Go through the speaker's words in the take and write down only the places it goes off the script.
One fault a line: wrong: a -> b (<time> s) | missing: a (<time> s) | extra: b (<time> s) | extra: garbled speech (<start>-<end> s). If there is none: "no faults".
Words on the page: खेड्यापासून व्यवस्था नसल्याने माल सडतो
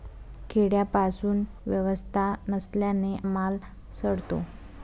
no faults